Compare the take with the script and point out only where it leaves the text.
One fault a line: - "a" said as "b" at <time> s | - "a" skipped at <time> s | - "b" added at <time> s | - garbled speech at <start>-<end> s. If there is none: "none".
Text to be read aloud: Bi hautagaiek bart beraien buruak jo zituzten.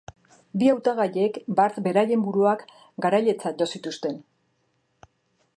- "garailetzat" added at 3.1 s